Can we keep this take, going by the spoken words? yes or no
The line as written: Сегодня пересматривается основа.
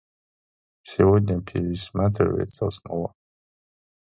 yes